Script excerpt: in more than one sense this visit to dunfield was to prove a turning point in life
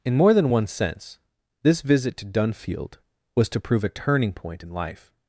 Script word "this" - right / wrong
right